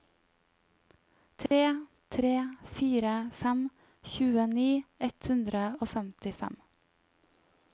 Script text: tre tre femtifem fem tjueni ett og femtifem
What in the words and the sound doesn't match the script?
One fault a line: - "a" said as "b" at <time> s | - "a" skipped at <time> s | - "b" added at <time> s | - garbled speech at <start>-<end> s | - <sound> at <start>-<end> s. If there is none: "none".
- dropout at 1.5-1.5 s
- "femtifem" said as "fire" at 2.8 s
- "hundre" added at 5.3 s